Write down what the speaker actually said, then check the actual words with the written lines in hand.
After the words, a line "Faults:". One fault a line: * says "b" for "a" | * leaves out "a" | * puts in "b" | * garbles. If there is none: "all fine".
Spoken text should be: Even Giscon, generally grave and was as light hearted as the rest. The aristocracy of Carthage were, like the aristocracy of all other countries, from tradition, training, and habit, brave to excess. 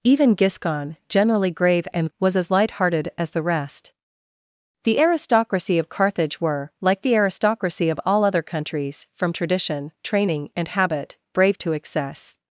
Even Giscon, generally grave and was as light hearted as the rest. The aristocracy of Carthage were, like the aristocracy of all other countries, from tradition, training, and habit, brave to excess.
Faults:
all fine